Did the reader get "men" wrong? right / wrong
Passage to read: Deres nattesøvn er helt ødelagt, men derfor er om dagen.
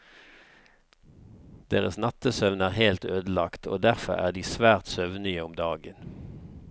wrong